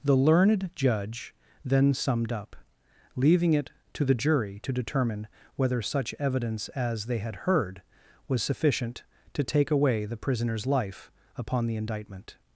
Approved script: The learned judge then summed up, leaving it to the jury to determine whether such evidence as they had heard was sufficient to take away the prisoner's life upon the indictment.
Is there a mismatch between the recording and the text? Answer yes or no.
no